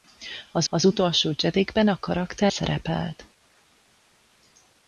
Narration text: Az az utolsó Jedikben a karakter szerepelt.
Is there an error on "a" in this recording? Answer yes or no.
no